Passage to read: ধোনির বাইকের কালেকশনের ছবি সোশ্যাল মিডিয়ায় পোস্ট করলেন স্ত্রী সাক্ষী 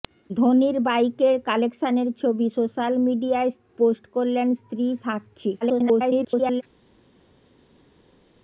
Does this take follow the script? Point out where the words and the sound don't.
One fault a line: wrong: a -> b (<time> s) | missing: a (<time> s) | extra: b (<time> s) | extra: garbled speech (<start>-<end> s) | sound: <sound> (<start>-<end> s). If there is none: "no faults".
extra: garbled speech (5.6-6.6 s)